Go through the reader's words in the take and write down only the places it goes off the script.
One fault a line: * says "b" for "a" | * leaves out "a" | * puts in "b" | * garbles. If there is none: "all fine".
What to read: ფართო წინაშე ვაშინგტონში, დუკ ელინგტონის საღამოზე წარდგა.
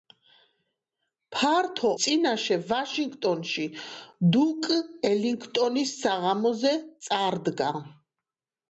all fine